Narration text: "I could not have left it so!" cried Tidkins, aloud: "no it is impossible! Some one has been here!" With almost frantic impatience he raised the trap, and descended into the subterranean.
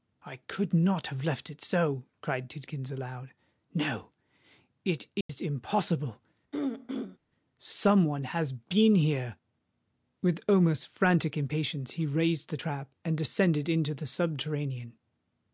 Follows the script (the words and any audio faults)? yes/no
no